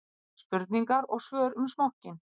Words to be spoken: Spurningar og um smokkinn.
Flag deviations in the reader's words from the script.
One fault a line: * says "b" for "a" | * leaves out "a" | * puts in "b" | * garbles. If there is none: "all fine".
* puts in "svör"